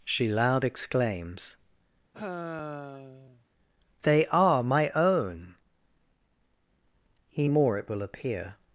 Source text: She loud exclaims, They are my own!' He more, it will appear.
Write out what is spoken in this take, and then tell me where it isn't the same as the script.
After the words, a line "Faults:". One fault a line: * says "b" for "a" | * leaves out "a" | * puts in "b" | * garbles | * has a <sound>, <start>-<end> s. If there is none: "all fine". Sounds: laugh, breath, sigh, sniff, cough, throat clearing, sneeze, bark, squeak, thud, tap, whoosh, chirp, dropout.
She loud exclaims, They are my own!' He more, it will appear.
Faults:
* has a sigh, 2.1-3.4 s